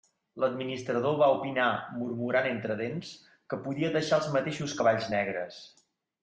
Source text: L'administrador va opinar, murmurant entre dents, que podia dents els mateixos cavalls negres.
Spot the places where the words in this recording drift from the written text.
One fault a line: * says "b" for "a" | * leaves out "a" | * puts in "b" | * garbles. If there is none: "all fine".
* says "deixar" for "dents"